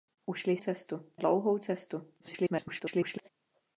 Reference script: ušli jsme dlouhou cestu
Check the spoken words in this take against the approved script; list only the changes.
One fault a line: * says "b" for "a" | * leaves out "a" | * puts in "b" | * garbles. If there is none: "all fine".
* says "cestu" for "jsme"
* garbles